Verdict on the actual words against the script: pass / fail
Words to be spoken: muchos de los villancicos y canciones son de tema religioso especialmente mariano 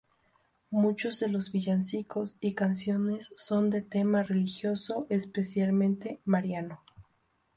pass